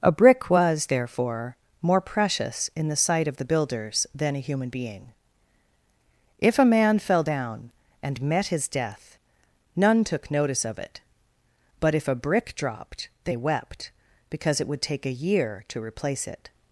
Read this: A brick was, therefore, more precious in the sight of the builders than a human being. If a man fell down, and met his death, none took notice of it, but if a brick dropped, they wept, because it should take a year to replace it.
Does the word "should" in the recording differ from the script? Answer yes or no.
yes